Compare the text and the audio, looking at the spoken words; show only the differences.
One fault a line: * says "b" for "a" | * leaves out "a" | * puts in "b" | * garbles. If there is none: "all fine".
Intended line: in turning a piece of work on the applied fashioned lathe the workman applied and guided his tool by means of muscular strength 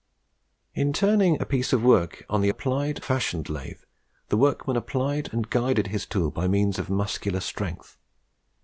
all fine